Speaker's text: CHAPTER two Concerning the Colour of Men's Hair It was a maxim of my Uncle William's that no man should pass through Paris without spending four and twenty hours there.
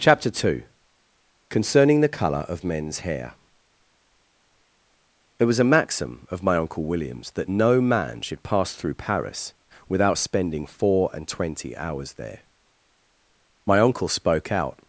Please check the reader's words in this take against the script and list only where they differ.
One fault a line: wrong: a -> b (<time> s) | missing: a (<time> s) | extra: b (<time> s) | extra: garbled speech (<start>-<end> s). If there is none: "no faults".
extra: My uncle spoke out (13.7 s)